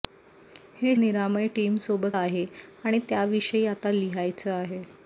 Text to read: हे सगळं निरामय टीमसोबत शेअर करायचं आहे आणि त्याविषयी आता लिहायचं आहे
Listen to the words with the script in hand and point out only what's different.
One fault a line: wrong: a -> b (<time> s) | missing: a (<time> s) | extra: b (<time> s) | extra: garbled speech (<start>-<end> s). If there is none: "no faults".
missing: सगळं (0.9 s)
missing: शेअर करायचं (2.2 s)